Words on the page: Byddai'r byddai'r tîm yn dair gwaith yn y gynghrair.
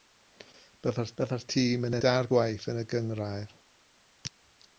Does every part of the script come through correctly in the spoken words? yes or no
yes